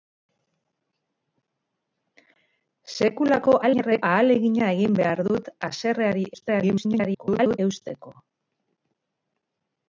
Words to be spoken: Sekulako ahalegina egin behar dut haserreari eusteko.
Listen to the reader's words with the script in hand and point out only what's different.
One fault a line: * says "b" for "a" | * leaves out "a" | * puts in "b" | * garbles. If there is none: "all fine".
* garbles
* garbles